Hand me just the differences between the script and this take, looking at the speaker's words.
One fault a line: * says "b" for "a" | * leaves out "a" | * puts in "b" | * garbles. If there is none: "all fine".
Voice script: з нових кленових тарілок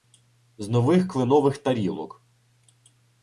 all fine